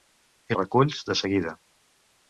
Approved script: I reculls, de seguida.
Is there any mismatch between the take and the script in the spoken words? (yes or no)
no